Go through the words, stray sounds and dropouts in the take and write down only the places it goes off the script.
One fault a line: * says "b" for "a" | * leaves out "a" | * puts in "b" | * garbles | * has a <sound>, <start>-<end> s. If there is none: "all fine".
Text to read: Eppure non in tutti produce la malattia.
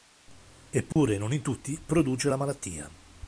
* has a dropout, 0.9-1.0 s